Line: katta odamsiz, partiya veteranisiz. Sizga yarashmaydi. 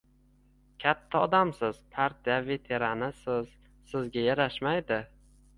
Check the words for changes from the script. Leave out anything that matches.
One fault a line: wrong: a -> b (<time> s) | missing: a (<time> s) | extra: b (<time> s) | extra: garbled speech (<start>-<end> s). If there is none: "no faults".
no faults